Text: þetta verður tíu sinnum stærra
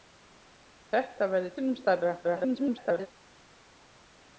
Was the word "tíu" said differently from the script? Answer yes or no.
yes